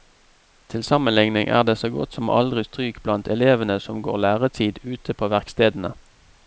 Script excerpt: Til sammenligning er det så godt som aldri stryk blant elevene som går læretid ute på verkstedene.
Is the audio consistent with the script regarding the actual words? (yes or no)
yes